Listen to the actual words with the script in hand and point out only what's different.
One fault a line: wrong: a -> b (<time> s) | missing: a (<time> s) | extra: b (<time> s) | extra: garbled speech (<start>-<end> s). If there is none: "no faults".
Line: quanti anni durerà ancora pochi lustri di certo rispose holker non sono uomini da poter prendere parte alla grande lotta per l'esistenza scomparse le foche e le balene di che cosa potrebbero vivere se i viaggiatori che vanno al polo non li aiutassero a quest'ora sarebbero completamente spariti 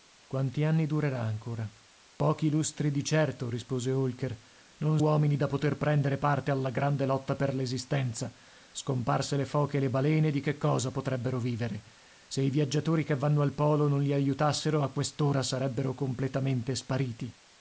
missing: sono (5.0 s)